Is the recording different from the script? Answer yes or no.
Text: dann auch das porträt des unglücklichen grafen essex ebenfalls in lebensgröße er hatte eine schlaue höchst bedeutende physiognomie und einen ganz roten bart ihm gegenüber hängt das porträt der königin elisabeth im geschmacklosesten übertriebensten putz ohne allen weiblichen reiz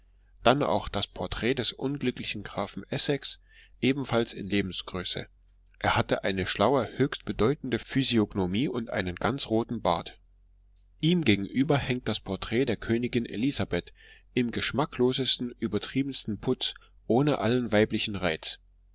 no